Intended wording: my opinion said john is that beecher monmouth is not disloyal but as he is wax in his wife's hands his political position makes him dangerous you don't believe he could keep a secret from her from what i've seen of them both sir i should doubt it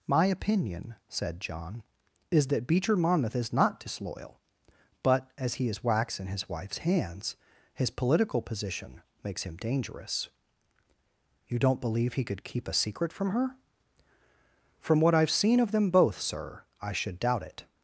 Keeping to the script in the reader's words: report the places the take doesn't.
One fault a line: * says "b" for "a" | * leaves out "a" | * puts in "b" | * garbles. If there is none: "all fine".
all fine